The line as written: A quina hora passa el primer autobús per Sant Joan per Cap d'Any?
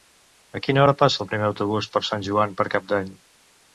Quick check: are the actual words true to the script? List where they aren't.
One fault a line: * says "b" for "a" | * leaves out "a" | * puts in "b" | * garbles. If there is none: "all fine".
all fine